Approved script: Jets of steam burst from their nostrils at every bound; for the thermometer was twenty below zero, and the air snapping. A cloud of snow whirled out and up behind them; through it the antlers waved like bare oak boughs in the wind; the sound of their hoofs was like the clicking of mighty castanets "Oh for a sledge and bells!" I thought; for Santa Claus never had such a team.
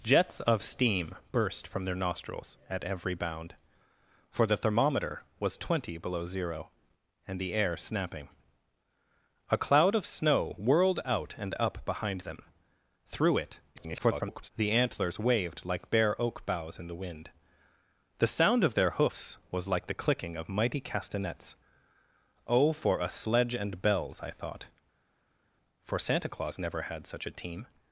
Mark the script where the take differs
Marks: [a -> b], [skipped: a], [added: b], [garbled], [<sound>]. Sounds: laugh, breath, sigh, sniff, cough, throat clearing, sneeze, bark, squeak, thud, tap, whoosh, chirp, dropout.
Jets of steam burst from their nostrils at every bound; for the thermometer was twenty below zero, and the air snapping. A cloud of snow whirled out and up behind them; through it [garbled] the antlers waved like bare oak boughs in the wind; the sound of their hoofs was like the clicking of mighty castanets "Oh for a sledge and bells!" I thought; for Santa Claus never had such a team.